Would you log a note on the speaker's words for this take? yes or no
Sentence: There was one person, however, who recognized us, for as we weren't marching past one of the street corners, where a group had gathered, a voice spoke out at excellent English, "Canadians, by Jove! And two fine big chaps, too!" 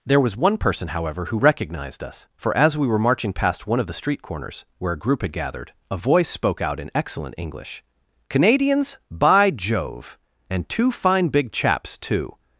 yes